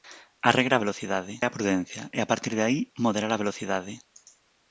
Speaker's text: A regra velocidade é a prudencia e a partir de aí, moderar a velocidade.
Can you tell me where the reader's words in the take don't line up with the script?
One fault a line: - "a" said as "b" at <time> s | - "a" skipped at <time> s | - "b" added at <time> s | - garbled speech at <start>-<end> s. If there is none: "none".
none